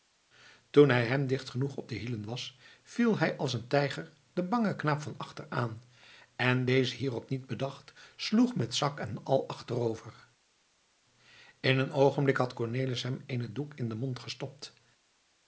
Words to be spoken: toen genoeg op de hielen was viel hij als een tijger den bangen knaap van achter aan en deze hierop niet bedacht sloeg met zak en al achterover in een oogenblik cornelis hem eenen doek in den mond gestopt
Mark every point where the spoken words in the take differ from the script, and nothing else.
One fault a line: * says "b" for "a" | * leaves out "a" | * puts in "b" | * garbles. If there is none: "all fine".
* puts in "hij hem dicht"
* puts in "had"